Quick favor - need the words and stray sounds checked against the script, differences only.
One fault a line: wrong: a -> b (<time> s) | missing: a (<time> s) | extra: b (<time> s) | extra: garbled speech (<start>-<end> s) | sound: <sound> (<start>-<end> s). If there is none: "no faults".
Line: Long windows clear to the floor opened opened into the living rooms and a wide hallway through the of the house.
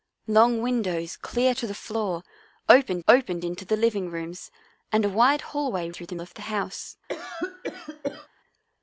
sound: cough (7.1-8.3 s)